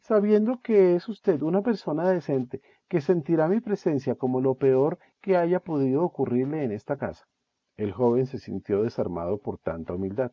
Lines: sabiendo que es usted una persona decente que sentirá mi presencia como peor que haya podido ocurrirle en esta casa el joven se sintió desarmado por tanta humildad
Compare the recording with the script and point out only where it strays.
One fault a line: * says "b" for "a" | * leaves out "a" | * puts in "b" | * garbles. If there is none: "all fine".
* puts in "lo"